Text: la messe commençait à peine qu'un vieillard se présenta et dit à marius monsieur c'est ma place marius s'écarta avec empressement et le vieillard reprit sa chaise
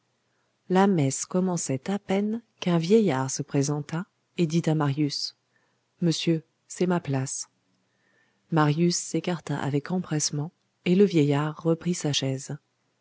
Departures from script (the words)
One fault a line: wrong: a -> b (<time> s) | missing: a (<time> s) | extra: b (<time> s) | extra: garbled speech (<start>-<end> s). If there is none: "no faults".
no faults